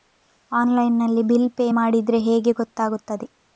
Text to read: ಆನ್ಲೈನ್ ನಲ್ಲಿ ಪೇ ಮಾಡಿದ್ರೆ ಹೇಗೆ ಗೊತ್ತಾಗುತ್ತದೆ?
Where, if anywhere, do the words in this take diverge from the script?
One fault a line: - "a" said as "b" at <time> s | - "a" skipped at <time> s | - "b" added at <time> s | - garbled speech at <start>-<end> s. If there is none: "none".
- "ಬಿಲ್" added at 1.2 s